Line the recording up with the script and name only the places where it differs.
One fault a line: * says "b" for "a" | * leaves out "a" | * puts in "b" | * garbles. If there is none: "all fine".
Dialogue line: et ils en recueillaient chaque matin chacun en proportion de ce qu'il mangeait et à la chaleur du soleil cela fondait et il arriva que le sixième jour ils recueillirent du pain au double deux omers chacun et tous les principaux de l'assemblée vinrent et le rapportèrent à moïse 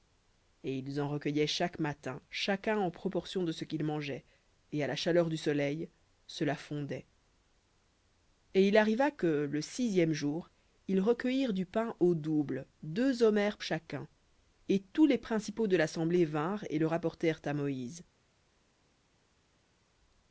all fine